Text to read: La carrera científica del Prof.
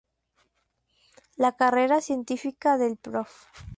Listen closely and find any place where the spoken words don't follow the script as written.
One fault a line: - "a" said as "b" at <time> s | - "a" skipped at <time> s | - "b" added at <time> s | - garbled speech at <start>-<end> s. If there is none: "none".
none